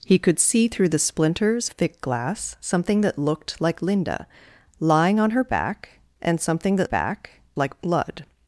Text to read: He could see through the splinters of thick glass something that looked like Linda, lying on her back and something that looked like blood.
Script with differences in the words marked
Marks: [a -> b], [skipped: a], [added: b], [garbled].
He could see through the splinters [skipped: of] thick glass something that looked like Linda, lying on her back and something that [looked -> back] like blood.